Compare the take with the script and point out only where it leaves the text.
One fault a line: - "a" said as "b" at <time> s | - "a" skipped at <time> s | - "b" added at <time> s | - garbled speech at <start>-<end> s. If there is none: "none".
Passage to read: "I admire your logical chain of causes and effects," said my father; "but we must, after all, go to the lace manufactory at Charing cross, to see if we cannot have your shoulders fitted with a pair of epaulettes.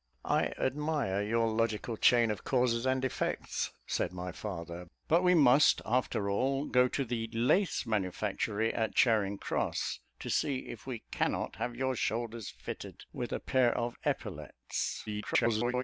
- garbled speech at 15.1-15.8 s